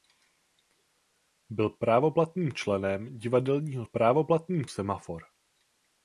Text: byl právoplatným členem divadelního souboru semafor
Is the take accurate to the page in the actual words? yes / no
no